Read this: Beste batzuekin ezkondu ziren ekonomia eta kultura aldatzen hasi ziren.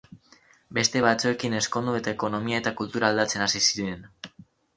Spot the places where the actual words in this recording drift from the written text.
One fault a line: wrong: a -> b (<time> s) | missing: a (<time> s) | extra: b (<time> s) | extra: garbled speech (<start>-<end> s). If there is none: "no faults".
wrong: ziren -> eta (2.0 s)